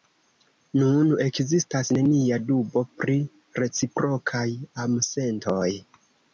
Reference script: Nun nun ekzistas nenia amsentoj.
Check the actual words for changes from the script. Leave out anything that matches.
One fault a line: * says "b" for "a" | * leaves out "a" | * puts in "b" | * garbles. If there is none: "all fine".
* leaves out "nun"
* puts in "dubo pri reciprokaj"